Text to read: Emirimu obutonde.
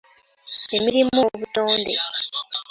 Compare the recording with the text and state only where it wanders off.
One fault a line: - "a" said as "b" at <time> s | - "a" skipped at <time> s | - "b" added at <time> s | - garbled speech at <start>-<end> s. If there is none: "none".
none